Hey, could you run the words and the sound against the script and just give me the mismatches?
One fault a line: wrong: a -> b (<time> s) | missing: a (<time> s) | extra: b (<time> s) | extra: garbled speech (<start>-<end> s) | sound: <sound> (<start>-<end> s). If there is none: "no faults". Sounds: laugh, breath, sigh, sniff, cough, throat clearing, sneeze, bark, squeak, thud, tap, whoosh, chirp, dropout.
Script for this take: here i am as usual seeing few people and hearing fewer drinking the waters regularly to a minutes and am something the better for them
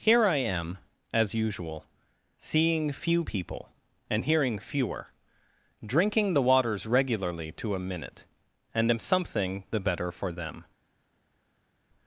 wrong: minutes -> minute (7.8 s)